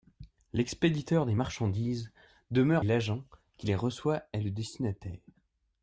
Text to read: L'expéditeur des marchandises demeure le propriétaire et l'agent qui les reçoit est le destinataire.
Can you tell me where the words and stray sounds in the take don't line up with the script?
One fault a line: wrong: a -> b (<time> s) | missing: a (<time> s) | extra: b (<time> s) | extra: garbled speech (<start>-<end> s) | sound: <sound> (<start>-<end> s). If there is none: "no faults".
missing: le propriétaire et (2.9 s)